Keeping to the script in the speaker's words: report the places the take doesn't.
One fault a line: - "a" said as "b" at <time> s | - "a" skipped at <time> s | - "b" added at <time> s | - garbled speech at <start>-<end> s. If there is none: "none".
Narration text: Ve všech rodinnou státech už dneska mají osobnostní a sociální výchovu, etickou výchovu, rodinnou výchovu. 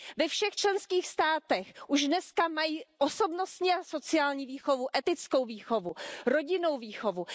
- "rodinnou" said as "členských" at 0.5 s